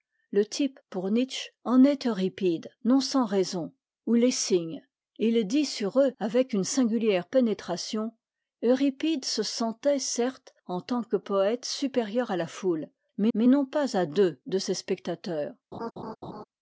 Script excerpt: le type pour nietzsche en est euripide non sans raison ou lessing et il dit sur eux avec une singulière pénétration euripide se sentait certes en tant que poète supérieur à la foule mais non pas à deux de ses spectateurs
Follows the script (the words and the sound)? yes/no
no